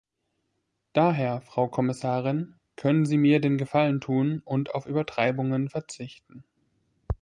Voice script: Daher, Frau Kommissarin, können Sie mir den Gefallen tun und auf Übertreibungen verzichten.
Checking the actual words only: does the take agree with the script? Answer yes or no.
yes